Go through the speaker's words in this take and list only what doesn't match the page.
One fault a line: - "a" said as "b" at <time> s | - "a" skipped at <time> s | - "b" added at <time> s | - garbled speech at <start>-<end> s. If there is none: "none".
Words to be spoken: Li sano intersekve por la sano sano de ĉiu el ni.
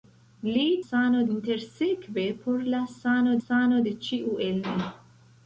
none